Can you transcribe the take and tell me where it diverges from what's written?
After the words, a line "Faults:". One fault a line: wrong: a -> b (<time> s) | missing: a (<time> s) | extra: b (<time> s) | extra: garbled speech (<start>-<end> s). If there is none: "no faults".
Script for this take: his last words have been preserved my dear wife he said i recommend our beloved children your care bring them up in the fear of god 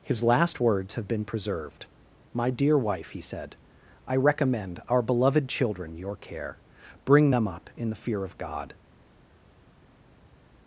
his last words have been preserved my dear wife he said i recommend our beloved children your care bring them up in the fear of god
Faults:
no faults